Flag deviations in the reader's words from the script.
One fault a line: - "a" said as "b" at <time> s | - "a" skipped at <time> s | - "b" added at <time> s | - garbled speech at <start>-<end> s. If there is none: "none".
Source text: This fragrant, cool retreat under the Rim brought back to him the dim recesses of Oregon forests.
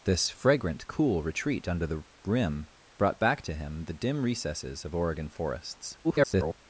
- garbled speech at 6.0-6.6 s